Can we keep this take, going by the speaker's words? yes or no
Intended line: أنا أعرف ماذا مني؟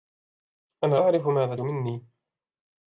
yes